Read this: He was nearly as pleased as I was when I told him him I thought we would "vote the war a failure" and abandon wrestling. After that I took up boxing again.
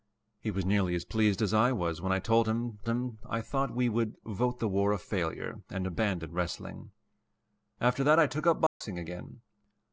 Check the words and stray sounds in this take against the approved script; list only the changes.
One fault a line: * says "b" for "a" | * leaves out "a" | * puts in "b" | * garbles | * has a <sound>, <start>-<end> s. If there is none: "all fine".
* has a dropout, 8.7-8.8 s